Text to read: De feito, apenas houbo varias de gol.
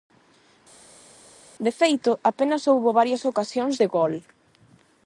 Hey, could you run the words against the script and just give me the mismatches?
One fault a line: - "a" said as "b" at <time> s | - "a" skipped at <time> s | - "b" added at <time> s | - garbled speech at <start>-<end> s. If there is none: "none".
- "ocasións" added at 3.3 s